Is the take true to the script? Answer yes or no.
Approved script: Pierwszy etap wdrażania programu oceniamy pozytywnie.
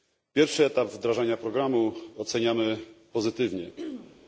yes